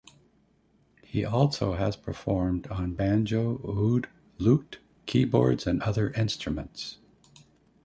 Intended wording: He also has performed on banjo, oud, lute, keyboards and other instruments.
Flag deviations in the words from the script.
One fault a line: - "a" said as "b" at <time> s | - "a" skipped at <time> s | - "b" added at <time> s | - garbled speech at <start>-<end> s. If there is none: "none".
none